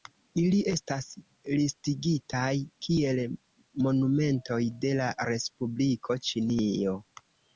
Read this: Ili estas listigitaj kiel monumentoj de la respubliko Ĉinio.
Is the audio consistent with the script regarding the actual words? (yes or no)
yes